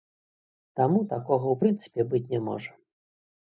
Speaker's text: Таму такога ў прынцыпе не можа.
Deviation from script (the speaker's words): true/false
true